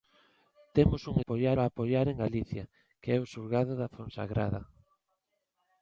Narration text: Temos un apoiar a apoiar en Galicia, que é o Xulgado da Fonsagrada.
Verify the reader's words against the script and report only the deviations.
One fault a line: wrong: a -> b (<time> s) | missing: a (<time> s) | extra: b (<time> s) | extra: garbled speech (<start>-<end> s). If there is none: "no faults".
no faults